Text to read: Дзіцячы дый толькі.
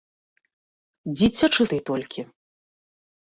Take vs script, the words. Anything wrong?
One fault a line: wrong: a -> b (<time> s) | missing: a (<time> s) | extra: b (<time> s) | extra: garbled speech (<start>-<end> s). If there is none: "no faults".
no faults